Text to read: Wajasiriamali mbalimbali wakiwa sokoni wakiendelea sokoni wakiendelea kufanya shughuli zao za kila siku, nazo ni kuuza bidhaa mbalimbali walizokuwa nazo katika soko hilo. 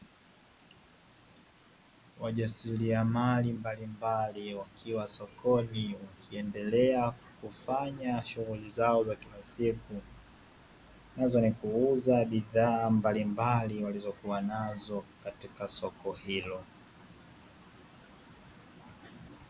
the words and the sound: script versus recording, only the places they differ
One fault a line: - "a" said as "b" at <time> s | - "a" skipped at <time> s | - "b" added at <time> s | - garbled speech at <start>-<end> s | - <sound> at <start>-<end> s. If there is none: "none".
- "sokoni wakiendelea" skipped at 7.1 s